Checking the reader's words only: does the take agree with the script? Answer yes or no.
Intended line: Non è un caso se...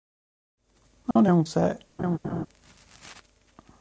no